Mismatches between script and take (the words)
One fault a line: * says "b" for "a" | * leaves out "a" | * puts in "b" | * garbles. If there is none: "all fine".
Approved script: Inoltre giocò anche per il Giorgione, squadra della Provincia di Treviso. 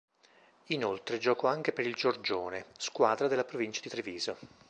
all fine